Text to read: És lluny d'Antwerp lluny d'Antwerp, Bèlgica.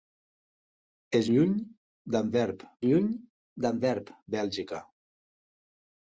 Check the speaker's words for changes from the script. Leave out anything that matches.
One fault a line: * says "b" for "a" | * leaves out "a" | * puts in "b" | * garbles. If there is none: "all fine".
all fine